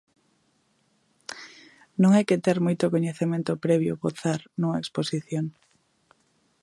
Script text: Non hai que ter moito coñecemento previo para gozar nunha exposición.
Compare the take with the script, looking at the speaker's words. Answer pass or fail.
fail